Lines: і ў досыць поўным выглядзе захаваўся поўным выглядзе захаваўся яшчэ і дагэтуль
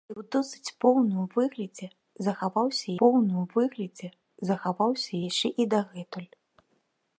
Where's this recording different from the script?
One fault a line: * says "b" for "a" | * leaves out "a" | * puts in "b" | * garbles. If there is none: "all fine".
all fine